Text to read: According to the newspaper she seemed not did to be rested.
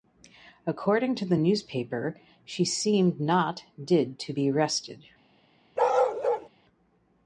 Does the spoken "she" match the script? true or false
true